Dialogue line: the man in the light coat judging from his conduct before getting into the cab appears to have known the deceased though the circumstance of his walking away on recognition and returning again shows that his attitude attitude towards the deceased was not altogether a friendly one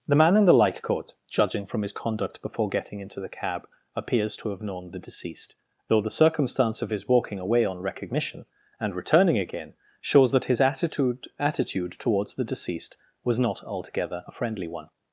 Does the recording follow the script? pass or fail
pass